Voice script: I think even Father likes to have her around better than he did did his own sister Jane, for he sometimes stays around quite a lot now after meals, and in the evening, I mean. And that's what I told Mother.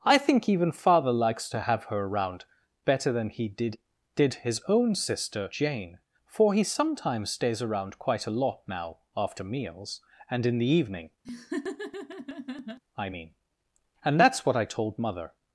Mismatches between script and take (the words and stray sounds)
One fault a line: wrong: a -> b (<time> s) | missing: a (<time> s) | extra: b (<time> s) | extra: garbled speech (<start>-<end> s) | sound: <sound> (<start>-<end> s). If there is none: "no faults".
sound: laugh (11.2-12.8 s)